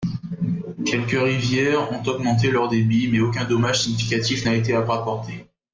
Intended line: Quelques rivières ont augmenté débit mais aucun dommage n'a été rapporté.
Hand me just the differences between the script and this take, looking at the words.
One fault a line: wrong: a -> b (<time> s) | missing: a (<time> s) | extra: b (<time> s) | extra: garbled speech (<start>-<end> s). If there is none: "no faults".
extra: leur (2.5 s)
extra: significatif (3.8 s)